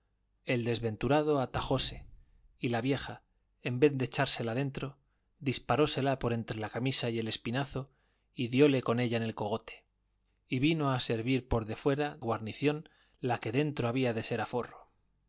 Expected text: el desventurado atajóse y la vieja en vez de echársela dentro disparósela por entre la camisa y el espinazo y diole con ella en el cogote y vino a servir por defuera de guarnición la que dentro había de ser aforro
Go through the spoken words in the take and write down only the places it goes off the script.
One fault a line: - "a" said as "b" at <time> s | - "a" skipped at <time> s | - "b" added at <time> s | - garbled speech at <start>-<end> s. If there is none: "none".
- "de" skipped at 12.2 s